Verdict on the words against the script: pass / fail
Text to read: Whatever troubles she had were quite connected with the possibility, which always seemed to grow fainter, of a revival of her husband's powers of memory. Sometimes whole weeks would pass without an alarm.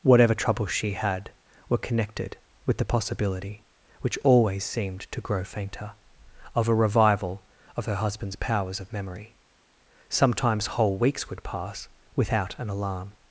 fail